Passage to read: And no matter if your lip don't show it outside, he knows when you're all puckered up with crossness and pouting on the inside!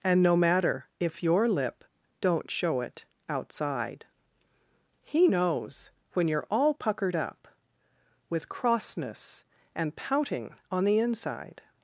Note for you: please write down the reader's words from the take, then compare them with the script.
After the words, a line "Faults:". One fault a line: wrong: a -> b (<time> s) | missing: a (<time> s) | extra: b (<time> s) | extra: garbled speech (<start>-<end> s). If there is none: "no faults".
And no matter if your lip don't show it outside, he knows when you're all puckered up with crossness and pouting on the inside!
Faults:
no faults